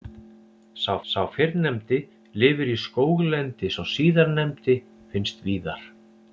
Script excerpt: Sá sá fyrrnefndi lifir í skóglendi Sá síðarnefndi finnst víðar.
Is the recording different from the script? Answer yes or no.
no